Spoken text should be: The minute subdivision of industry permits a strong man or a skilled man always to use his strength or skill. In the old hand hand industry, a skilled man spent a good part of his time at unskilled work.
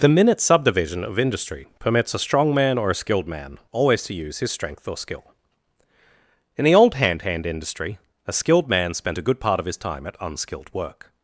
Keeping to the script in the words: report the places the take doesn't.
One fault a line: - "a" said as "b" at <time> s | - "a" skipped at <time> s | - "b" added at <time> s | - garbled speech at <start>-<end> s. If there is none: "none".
none